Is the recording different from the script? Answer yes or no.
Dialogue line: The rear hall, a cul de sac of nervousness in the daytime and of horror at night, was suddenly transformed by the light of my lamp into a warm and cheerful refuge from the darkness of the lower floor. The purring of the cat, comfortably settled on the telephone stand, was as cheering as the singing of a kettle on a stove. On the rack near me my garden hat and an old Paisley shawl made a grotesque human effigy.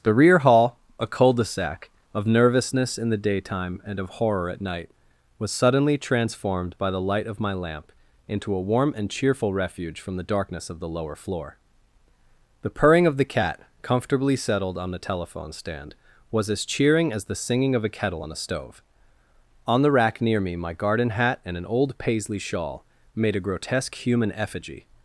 no